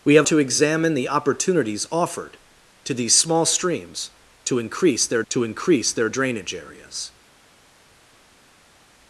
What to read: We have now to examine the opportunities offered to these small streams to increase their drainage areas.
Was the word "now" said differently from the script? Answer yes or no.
yes